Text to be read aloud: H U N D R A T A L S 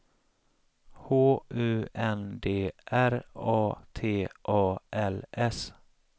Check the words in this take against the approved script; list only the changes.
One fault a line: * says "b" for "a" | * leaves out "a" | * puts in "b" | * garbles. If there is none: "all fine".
all fine